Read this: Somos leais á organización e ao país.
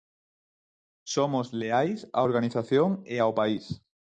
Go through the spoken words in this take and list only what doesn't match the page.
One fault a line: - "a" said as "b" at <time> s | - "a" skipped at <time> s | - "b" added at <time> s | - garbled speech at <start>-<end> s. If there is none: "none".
none